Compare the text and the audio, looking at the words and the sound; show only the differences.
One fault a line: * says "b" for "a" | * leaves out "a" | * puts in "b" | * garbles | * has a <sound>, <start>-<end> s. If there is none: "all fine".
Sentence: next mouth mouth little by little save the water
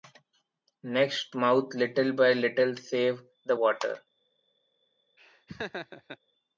* leaves out "mouth"
* has a laugh, 5.2-6.2 s